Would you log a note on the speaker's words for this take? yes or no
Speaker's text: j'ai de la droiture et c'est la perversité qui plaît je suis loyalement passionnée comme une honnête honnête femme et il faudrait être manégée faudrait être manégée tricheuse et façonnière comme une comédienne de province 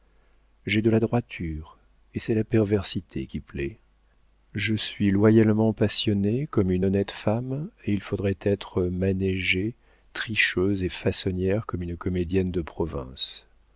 yes